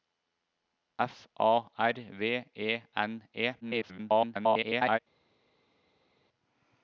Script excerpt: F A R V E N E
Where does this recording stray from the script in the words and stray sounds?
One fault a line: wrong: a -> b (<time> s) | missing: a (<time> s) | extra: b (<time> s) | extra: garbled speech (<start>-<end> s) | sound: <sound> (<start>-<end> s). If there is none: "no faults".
extra: garbled speech (3.6-5.0 s)